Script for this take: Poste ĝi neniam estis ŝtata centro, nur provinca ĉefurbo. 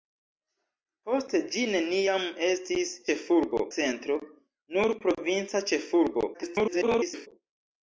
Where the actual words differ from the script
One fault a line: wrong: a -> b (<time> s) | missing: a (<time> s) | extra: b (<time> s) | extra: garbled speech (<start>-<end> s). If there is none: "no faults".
wrong: ŝtata -> ĉefurbo (3.1 s)
extra: garbled speech (6.3-7.3 s)